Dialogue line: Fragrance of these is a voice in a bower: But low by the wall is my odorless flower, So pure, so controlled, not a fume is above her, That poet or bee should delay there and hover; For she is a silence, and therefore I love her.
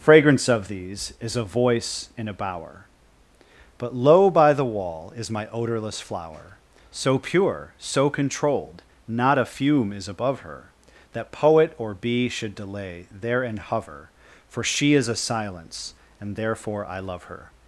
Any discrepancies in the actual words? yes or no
no